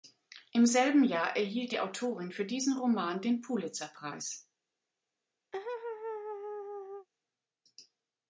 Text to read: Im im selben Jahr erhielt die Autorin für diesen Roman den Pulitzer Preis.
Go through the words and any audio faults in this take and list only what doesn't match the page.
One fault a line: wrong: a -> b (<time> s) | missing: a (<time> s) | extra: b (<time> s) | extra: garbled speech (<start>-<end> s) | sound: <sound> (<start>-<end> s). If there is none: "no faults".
missing: im (0.7 s)
sound: laugh (5.5-7.1 s)